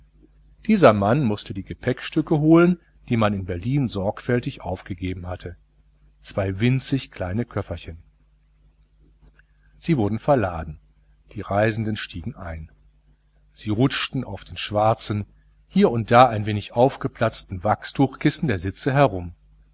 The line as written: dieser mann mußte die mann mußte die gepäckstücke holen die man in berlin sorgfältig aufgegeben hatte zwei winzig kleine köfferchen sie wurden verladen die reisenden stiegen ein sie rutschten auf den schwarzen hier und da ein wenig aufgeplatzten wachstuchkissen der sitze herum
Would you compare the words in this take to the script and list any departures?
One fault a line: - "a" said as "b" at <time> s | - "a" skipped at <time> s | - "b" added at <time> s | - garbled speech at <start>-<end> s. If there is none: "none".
- "mann mußte die" skipped at 1.6 s